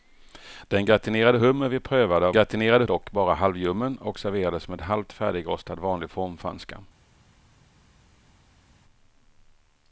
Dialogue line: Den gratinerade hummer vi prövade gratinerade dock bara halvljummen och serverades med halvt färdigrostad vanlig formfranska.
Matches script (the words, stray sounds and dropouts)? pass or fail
pass